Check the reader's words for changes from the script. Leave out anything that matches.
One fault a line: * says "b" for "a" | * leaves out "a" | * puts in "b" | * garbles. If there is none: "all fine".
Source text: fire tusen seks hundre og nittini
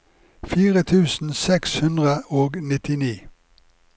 all fine